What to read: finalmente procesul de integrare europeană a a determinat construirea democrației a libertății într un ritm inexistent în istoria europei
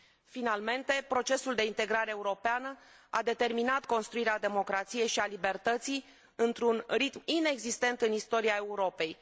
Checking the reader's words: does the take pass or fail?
fail